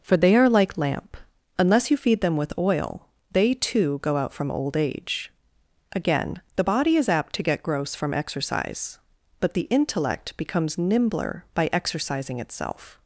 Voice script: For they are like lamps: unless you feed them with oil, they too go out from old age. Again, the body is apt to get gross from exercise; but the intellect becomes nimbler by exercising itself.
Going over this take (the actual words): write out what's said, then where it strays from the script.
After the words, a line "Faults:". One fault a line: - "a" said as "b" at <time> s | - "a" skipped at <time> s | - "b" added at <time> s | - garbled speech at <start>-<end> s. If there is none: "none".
For they are like lamp: unless you feed them with oil, they too go out from old age. Again, the body is apt to get gross from exercise; but the intellect becomes nimbler by exercising itself.
Faults:
- "lamps" said as "lamp" at 0.8 s